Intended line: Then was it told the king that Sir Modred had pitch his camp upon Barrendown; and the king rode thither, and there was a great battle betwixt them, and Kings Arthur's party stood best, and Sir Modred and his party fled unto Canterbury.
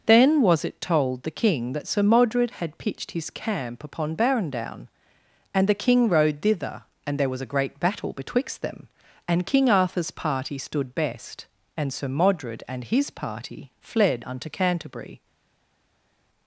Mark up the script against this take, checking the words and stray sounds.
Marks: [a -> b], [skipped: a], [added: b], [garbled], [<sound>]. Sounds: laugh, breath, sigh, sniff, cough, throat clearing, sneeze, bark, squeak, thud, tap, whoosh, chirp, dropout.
Then was it told the king that Sir Modred had [pitch -> pitched] his camp upon Barrendown; and the king rode thither, and there was a great battle betwixt them, and [Kings -> King] Arthur's party stood best, and Sir Modred and his party fled unto Canterbury.